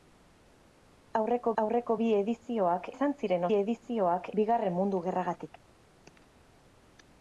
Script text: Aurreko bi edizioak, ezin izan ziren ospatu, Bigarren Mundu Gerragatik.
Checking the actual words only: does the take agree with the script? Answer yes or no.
no